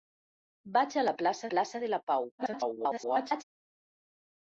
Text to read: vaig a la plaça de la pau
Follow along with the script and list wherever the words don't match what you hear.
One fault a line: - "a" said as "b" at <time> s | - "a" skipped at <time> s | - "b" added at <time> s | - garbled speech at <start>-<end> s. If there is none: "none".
- "plaça" added at 1.5 s
- garbled speech at 2.4-3.4 s